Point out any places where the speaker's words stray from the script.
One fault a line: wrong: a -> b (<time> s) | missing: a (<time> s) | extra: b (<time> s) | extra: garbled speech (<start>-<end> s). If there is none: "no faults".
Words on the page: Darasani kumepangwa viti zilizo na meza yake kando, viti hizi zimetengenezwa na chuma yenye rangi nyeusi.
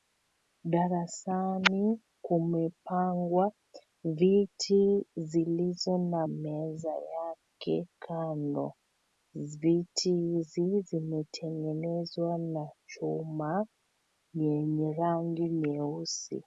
no faults